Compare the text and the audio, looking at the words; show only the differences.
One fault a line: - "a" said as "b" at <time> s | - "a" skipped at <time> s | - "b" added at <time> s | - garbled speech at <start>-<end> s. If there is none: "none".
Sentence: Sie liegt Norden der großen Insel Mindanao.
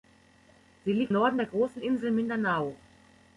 none